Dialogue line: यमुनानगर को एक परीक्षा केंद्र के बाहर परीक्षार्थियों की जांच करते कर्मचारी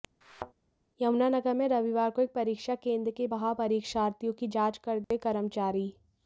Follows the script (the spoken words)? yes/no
no